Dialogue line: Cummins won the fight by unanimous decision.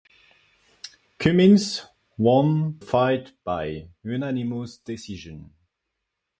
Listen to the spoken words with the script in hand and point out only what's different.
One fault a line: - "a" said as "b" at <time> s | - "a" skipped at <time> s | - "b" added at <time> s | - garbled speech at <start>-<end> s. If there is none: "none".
- "the" skipped at 2.8 s